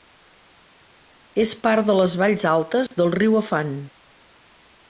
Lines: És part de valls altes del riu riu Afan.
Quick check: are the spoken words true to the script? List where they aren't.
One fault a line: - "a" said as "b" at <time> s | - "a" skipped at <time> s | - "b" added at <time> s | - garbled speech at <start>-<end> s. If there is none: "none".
- "les" added at 2.0 s
- "riu" skipped at 3.4 s